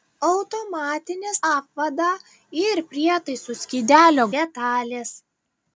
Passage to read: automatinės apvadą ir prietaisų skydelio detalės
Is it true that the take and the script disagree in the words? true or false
false